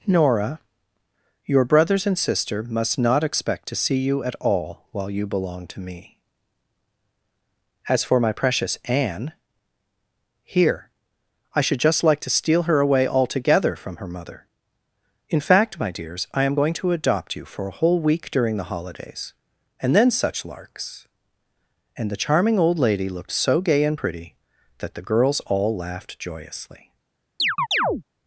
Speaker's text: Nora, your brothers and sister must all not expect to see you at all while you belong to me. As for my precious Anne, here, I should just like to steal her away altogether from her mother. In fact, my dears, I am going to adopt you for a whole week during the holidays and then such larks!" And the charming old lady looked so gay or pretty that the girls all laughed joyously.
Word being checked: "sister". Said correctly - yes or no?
yes